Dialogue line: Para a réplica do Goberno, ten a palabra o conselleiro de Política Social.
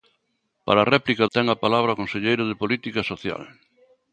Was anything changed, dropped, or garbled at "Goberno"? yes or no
yes